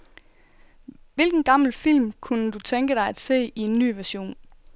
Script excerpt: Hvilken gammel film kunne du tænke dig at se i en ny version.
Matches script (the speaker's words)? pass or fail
pass